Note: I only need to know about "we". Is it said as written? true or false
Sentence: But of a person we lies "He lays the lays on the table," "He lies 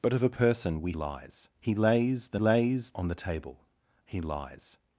true